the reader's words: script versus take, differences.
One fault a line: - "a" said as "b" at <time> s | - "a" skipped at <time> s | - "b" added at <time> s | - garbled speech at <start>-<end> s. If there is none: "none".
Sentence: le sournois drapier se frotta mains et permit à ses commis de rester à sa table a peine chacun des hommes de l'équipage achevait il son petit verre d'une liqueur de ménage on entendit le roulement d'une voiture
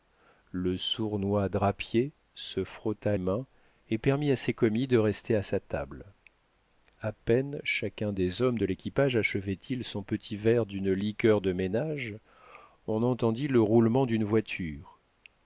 none